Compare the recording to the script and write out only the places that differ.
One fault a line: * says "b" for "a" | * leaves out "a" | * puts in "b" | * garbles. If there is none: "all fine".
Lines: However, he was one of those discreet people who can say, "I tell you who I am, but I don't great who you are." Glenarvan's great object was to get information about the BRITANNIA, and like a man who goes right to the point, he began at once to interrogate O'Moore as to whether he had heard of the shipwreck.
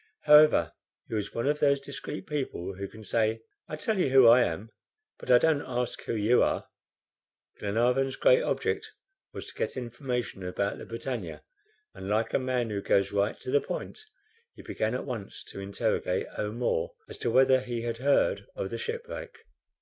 * says "ask" for "great"